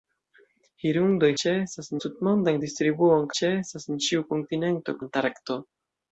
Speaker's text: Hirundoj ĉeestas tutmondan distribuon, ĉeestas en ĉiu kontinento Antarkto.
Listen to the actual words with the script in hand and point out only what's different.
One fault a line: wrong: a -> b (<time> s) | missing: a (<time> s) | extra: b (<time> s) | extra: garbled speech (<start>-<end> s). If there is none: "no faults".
no faults